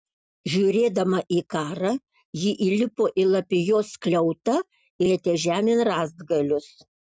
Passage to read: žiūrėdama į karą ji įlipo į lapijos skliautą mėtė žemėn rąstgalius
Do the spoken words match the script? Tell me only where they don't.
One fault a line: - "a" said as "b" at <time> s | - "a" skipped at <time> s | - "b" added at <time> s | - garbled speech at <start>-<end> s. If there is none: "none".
none